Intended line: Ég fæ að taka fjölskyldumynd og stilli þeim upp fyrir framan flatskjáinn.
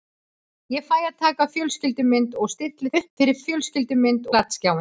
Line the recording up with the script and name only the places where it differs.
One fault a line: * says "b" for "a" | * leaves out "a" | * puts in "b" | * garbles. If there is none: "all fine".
* leaves out "þeim"
* says "fjölskyldumynd" for "framan"